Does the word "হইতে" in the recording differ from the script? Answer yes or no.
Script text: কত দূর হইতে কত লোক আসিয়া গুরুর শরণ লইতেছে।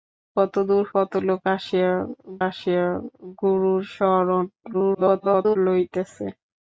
yes